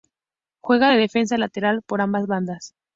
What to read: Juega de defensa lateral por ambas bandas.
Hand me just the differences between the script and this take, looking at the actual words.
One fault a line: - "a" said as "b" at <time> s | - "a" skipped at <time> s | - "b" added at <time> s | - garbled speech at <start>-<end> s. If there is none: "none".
none